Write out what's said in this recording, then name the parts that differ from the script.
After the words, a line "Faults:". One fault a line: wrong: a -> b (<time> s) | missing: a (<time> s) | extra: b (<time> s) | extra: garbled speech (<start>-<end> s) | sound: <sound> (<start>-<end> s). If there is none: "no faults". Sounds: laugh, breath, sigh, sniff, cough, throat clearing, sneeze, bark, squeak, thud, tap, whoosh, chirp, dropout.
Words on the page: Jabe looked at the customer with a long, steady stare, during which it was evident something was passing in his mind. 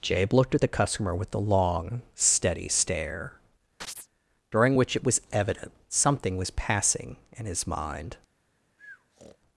Jabe looked at the customer with a long, steady stare, during which it was evident something was passing in his mind.
Faults:
sound: chirp (3.8-4.1 s)
sound: breath (8.8-9.4 s)